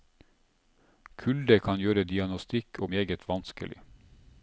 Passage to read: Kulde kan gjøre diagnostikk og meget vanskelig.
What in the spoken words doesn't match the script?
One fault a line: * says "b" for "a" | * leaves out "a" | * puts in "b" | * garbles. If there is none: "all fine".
all fine